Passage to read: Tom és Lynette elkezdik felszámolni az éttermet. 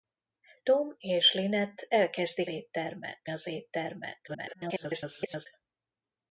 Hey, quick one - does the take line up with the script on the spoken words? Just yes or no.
no